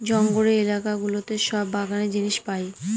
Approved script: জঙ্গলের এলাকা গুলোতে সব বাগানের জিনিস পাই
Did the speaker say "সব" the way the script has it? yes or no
yes